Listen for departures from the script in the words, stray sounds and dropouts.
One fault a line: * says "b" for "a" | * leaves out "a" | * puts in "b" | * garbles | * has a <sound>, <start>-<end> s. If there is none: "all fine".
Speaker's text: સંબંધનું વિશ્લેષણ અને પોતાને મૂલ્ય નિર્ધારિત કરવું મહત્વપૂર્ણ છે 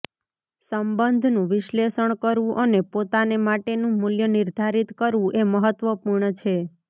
* puts in "કરવું"
* puts in "માટેનું"
* puts in "એ"